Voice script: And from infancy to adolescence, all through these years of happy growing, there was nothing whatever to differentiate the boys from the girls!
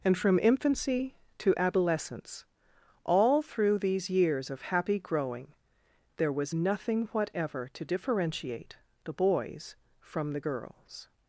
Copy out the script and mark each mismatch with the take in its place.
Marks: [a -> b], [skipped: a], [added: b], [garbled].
And from infancy to adolescence, all through these years of happy growing, there was nothing whatever to differentiate the boys from the girls!